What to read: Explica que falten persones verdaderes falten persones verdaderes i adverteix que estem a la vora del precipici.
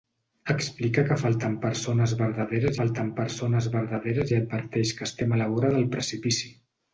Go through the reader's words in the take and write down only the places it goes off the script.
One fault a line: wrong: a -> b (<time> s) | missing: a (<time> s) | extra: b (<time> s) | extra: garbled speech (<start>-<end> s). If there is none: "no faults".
no faults